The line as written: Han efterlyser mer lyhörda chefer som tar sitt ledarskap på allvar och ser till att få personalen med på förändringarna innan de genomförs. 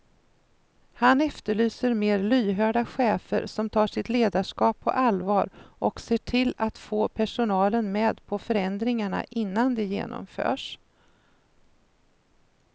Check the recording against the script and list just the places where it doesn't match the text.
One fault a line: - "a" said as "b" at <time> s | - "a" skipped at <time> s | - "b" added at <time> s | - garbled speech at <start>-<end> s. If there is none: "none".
none